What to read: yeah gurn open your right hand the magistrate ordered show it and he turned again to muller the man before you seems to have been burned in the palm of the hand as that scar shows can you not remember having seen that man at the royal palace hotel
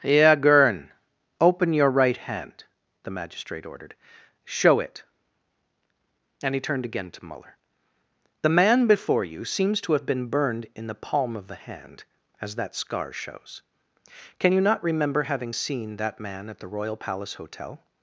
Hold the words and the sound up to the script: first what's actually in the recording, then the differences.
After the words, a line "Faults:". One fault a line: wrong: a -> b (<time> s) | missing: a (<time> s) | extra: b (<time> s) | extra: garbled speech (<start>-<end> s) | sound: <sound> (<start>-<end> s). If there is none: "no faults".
yeah gurn open your right hand the magistrate ordered show it and he turned again to muller the man before you seems to have been burned in the palm of the hand as that scar shows can you not remember having seen that man at the royal palace hotel
Faults:
no faults